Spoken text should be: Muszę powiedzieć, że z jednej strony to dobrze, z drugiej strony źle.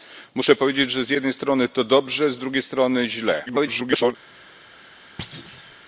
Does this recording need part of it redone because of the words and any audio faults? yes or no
yes